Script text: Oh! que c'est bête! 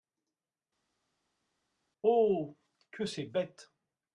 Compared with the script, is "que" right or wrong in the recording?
right